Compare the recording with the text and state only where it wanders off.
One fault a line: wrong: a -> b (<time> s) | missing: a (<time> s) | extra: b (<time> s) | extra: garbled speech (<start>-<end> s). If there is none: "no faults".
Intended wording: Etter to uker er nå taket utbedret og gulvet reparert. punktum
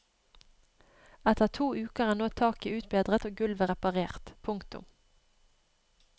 no faults